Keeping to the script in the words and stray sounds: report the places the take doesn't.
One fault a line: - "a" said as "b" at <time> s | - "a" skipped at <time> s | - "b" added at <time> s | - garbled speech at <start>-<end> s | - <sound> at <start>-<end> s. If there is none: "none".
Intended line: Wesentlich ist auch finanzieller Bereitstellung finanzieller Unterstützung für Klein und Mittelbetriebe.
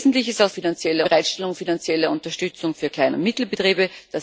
none